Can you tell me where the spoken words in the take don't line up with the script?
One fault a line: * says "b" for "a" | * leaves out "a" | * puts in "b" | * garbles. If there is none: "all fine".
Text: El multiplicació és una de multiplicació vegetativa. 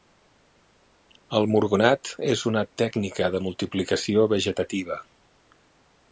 * says "murgonat" for "multiplicació"
* puts in "tècnica"